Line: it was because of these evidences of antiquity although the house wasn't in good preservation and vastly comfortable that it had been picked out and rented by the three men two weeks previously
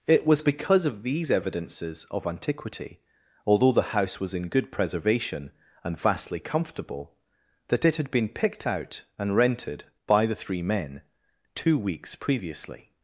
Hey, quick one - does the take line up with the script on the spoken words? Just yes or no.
no